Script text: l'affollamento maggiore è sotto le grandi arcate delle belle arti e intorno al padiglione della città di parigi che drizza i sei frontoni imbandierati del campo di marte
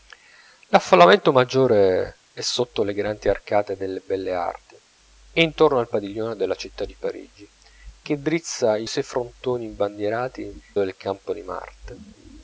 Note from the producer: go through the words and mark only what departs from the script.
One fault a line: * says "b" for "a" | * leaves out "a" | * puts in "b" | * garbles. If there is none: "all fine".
all fine